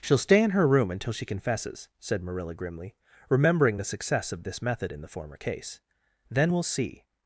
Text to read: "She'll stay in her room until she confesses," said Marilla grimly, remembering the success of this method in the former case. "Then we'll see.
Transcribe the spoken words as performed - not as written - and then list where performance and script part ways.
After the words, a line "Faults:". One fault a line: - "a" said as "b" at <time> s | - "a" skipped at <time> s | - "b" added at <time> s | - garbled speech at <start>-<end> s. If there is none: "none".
"She'll stay in her room until she confesses," said Marilla grimly, remembering the success of this method in the former case. "Then we'll see.
Faults:
none